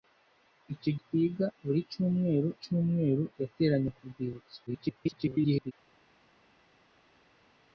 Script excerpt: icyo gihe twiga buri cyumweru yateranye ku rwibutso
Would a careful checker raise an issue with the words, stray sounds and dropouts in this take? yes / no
yes